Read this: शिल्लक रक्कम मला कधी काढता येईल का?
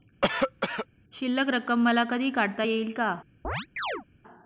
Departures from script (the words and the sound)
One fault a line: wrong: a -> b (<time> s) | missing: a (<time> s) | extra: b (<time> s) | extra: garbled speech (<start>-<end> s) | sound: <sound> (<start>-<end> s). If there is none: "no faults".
sound: cough (0.2-0.9 s)
sound: chirp (3.4-4.1 s)